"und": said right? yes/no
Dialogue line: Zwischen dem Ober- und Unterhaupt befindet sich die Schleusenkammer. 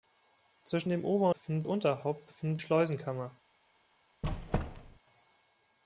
no